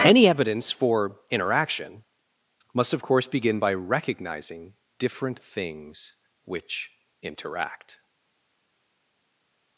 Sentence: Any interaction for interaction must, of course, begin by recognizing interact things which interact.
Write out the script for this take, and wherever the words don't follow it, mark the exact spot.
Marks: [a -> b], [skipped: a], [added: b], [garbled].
Any [interaction -> evidence] for interaction must, of course, begin by recognizing [interact -> different] things which interact.